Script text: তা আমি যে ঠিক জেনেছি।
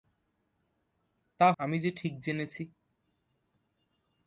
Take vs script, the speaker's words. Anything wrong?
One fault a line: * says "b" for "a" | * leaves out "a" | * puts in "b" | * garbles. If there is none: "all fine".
all fine